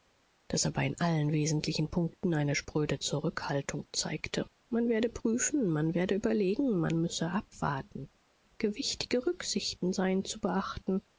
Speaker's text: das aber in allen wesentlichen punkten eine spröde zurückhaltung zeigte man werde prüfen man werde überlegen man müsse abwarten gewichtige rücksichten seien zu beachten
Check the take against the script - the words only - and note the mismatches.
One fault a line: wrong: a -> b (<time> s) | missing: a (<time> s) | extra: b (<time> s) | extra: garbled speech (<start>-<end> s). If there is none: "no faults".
no faults